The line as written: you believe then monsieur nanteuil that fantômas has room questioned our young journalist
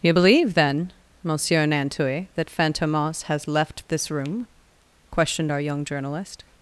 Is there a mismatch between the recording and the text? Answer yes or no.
yes